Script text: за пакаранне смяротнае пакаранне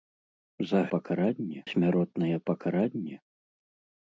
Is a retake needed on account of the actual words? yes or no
no